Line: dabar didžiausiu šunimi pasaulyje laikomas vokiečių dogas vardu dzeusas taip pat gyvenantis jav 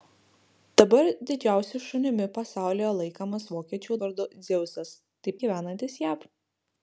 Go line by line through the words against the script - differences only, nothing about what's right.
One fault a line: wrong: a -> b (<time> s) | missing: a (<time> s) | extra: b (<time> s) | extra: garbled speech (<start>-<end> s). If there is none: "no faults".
missing: dogas (4.0 s)
missing: pat (5.4 s)